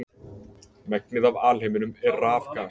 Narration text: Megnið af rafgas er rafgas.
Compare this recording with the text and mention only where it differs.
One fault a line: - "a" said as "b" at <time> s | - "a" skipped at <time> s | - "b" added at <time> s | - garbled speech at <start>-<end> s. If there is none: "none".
- "rafgas" said as "alheiminum" at 1.5 s